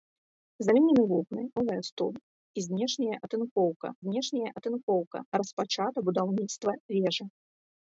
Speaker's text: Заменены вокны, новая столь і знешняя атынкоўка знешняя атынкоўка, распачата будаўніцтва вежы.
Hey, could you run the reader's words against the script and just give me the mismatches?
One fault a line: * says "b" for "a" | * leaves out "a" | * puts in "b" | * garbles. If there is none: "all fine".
all fine